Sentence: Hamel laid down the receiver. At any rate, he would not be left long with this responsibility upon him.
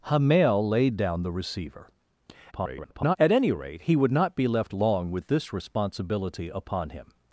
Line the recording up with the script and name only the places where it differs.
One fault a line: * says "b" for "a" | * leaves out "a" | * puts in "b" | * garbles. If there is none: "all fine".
* garbles